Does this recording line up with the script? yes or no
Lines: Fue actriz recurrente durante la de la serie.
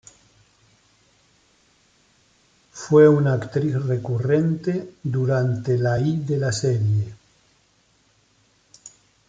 no